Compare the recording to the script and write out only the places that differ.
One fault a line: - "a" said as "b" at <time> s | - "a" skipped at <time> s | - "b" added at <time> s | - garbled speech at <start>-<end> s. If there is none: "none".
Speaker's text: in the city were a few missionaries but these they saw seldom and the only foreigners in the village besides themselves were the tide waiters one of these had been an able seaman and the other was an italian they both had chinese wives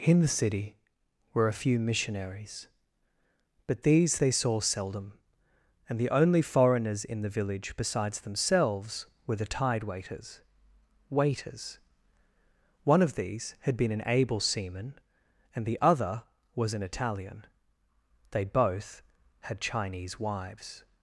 - "waiters" added at 11.1 s